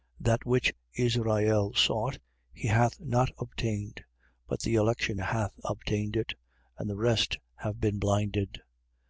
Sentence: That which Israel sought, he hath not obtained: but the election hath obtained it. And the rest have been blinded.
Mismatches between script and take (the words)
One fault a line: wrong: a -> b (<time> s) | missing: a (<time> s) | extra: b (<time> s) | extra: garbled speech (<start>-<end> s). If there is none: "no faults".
no faults